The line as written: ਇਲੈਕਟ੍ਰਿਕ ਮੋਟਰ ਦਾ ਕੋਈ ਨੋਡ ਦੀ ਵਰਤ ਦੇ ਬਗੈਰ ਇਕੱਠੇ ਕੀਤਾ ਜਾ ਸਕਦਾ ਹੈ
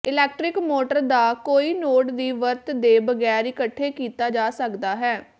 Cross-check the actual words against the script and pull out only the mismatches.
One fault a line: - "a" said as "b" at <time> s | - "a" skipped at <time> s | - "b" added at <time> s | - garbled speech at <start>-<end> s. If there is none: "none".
none